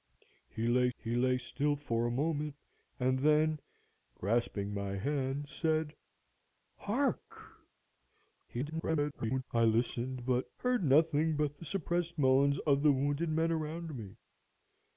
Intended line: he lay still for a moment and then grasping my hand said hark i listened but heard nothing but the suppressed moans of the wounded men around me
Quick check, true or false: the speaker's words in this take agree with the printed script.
false